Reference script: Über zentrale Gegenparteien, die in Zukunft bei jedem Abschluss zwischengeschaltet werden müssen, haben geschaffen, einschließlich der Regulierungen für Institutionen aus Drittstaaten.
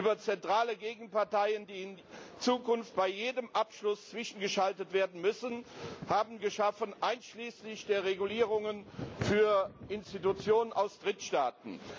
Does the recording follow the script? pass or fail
pass